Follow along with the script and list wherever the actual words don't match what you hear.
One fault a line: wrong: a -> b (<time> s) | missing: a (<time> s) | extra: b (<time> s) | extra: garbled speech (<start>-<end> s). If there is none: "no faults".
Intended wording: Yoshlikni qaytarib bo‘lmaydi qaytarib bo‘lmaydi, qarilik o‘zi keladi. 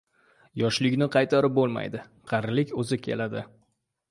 missing: qaytarib bo‘lmaydi (2.0 s)